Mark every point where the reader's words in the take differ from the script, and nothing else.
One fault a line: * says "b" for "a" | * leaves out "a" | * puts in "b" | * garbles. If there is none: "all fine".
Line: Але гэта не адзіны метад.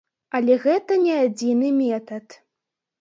all fine